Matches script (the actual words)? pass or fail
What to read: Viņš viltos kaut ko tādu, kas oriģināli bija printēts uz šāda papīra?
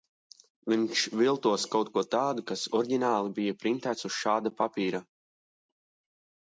pass